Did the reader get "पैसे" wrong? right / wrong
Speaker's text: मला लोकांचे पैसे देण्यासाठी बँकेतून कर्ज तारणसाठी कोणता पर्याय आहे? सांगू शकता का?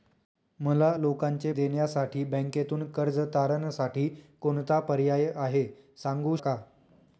wrong